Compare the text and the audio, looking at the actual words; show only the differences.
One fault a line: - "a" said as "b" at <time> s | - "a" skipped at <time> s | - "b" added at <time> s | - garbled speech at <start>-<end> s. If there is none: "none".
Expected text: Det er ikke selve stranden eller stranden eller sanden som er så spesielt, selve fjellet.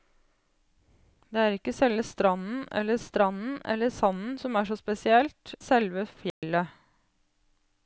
none